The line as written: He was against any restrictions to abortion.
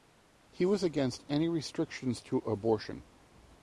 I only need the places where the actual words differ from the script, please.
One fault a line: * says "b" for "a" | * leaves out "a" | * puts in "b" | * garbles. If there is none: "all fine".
all fine